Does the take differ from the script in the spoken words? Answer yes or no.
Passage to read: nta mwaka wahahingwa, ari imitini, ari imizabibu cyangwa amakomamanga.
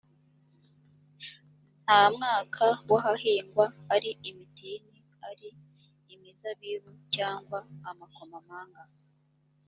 no